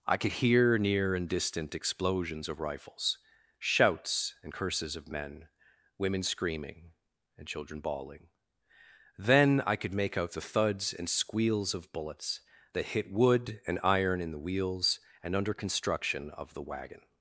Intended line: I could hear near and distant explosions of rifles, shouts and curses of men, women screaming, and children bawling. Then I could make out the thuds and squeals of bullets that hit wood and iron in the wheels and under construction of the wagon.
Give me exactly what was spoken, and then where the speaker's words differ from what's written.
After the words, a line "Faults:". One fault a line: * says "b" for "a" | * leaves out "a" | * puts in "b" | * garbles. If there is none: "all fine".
I could hear near and distant explosions of rifles, shouts and curses of men, women screaming, and children bawling. Then I could make out the thuds and squeals of bullets that hit wood and iron in the wheels and under construction of the wagon.
Faults:
all fine